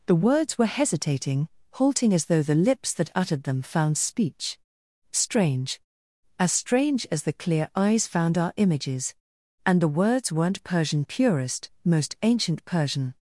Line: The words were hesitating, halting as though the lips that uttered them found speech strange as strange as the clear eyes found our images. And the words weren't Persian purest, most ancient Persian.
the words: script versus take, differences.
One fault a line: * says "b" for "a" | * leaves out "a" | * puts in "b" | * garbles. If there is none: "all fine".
all fine